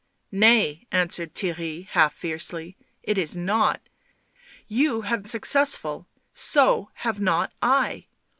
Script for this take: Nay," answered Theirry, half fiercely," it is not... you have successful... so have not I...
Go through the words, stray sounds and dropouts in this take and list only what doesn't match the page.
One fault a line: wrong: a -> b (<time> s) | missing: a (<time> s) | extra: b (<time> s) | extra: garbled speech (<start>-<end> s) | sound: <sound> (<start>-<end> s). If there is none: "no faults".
no faults